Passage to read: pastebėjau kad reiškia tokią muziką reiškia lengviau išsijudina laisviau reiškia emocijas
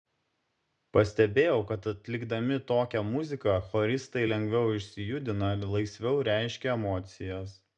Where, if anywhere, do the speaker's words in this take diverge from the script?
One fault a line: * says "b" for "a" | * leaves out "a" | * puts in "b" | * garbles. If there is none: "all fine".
* says "atlikdami" for "reiškia"
* says "choristai" for "reiškia"